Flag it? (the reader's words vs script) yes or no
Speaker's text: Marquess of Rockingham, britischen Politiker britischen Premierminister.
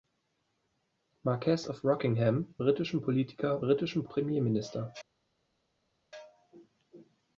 no